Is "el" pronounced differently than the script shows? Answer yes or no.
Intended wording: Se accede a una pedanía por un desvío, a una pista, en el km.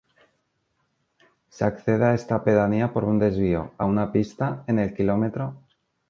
no